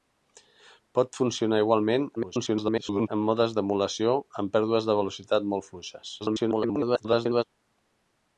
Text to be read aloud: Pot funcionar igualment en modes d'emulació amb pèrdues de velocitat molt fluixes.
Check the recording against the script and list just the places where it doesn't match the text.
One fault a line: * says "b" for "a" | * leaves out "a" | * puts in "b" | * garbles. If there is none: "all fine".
* garbles
* garbles